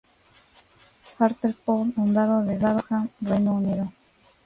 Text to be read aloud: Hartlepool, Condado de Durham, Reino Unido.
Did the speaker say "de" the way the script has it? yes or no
yes